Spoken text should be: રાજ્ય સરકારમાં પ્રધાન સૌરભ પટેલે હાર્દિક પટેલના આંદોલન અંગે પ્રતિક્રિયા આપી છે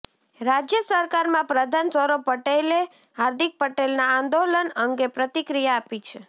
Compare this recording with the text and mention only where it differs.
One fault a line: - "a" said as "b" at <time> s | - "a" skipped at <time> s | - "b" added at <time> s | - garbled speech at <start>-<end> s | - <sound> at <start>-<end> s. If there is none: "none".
none